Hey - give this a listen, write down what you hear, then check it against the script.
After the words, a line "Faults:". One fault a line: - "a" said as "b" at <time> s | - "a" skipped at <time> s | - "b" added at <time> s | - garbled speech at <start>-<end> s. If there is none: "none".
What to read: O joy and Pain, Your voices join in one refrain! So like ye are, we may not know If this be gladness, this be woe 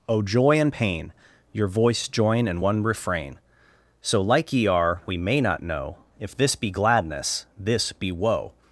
O joy and Pain, Your voice join in one refrain! So like ye are, we may not know If this be gladness, this be woe
Faults:
- "voices" said as "voice" at 1.7 s